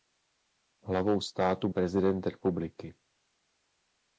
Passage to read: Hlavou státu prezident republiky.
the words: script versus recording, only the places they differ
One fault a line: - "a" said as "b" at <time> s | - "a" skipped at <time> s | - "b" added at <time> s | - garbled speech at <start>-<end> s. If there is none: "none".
none